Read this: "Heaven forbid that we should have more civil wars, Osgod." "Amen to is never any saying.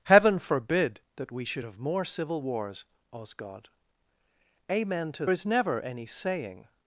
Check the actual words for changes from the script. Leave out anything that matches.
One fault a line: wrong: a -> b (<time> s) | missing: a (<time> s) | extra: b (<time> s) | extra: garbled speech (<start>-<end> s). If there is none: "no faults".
no faults